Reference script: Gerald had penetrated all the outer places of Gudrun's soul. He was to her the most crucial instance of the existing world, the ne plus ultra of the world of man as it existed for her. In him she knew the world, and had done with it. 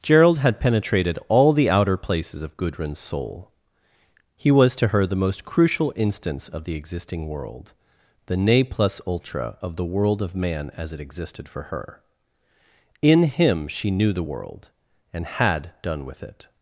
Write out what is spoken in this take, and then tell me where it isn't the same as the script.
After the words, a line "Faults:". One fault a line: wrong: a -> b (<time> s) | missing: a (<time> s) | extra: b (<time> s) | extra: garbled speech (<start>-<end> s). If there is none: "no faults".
Gerald had penetrated all the outer places of Gudrun's soul. He was to her the most crucial instance of the existing world, the ne plus ultra of the world of man as it existed for her. In him she knew the world, and had done with it.
Faults:
no faults